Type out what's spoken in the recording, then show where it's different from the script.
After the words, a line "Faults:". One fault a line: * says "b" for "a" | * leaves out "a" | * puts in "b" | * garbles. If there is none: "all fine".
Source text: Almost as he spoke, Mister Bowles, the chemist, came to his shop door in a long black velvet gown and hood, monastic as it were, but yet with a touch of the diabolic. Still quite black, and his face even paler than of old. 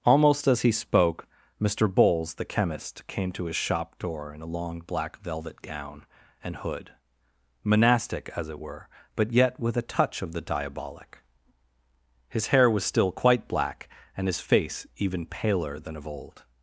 Almost as he spoke, Mister Bowles, the chemist, came to his shop door in a long black velvet gown and hood, monastic as it were, but yet with a touch of the diabolic. His hair was still quite black, and his face even paler than of old.
Faults:
* puts in "His hair was"